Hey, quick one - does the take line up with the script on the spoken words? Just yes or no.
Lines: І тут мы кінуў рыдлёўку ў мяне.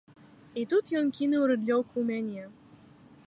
no